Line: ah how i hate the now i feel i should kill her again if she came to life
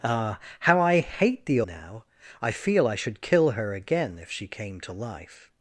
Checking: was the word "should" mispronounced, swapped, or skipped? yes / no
no